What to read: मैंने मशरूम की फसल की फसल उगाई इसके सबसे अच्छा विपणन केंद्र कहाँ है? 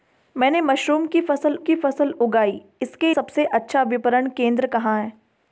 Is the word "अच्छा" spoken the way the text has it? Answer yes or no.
yes